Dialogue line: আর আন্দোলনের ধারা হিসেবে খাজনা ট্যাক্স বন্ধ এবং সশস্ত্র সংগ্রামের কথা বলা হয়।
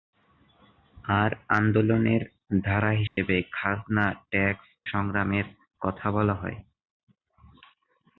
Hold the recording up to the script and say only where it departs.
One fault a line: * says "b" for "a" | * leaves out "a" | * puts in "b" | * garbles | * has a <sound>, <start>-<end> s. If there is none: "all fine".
* has a dropout, 3.1-3.2 s
* leaves out "বন্ধ এবং সশস্ত্র"